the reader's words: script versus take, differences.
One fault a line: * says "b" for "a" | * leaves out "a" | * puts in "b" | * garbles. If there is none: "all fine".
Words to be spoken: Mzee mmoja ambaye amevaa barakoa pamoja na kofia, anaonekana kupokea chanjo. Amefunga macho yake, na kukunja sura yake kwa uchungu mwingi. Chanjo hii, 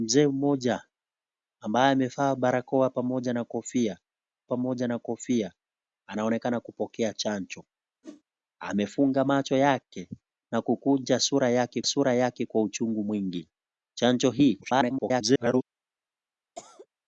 * puts in "pamoja na kofia"
* puts in "sura yake"
* garbles